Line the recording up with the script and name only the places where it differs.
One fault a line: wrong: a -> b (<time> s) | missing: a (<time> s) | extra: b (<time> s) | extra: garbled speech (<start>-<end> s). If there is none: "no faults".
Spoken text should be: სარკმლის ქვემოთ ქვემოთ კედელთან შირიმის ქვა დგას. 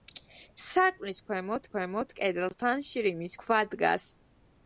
no faults